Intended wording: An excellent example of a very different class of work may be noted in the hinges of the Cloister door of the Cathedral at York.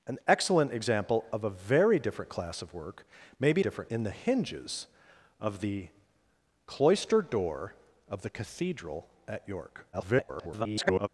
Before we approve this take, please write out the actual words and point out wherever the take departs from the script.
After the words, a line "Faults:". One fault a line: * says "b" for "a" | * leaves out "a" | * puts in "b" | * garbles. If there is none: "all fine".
An excellent example of a very different class of work may be different in the hinges of the Cloister door of the Cathedral at York. [garbled]
Faults:
* says "different" for "noted"
* garbles